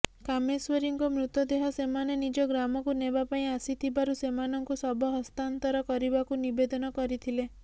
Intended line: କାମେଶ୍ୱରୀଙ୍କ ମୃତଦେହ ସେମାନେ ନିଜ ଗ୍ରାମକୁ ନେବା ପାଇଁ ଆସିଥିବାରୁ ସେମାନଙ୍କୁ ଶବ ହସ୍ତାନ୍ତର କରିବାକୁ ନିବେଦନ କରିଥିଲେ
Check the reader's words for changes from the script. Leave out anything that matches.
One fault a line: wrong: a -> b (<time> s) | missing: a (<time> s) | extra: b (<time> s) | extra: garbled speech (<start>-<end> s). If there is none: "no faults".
no faults